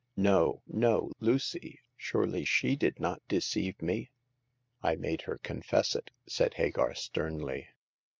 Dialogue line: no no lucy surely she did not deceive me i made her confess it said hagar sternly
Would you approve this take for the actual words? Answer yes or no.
yes